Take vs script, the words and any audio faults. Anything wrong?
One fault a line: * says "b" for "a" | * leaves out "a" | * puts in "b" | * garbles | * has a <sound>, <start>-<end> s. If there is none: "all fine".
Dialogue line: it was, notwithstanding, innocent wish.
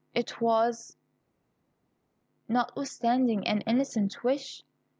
* puts in "an"